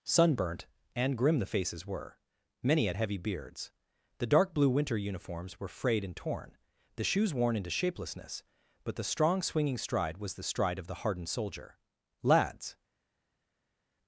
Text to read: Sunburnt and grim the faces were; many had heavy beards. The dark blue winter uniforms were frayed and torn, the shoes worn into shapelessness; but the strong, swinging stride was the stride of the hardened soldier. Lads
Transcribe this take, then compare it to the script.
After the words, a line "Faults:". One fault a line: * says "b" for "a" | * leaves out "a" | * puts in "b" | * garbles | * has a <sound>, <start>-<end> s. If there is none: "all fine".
Sunburnt and grim the faces were; many had heavy beards. The dark blue winter uniforms were frayed and torn, the shoes worn into shapelessness; but the strong, swinging stride was the stride of the hardened soldier. Lads
Faults:
all fine